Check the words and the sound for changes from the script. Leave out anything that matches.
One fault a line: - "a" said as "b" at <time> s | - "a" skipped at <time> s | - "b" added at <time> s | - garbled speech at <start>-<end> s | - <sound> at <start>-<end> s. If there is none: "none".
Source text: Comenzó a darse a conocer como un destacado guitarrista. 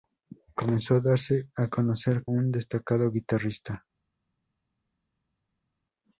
- "como" skipped at 2.2 s